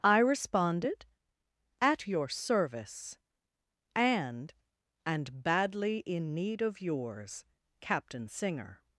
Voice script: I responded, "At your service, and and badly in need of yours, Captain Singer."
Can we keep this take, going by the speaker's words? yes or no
yes